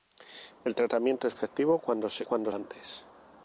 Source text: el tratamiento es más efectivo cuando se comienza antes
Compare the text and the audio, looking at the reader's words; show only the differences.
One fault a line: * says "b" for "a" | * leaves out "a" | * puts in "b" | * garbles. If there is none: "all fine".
* leaves out "más"
* says "cuando" for "comienza"